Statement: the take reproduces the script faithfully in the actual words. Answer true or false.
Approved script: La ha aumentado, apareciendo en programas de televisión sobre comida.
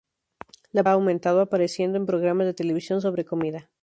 true